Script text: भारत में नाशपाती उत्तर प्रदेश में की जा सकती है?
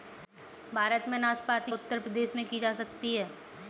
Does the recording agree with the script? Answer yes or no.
yes